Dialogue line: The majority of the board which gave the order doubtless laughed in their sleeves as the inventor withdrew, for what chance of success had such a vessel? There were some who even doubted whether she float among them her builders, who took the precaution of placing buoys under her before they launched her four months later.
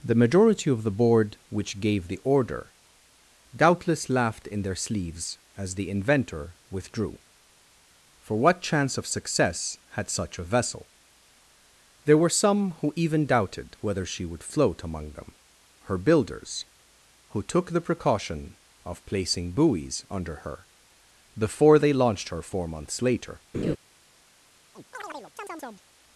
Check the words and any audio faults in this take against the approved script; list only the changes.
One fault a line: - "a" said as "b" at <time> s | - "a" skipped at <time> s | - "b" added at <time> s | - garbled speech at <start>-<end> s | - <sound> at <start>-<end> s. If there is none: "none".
- "would" added at 14.2 s
- laugh at 23.5-23.8 s
- chirp at 24.7-25.8 s